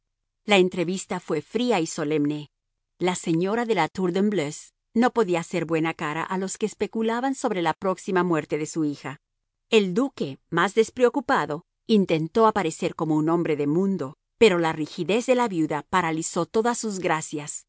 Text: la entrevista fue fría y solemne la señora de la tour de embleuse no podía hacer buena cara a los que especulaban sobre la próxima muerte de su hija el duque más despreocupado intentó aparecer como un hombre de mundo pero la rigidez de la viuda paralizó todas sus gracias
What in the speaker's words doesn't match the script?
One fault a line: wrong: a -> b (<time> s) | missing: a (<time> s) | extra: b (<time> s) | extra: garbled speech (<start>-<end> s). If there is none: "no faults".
no faults